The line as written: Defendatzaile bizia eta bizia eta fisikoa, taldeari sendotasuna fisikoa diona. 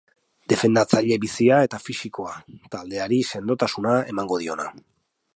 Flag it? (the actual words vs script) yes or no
yes